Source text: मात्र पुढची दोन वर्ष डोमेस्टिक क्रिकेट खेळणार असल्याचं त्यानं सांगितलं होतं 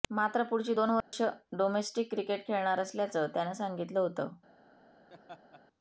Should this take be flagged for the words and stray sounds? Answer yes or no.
yes